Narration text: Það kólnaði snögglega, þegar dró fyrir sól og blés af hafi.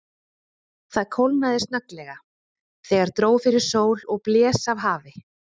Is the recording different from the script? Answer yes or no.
no